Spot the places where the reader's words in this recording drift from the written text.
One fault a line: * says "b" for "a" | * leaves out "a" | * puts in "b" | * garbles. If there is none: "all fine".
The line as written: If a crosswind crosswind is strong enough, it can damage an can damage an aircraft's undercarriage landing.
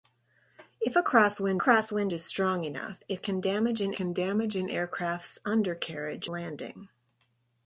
all fine